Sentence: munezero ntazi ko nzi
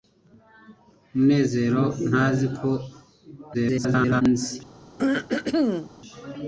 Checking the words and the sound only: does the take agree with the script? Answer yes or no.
no